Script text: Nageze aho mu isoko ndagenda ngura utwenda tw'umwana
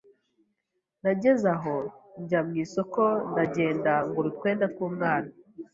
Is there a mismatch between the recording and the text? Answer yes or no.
yes